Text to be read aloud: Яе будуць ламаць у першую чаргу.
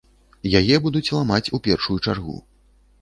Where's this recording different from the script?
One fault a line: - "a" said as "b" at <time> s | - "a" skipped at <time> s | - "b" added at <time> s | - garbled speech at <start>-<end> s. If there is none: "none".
none